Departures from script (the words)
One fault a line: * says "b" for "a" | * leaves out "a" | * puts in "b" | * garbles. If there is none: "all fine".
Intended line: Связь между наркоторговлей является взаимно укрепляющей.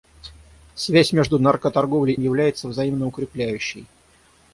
all fine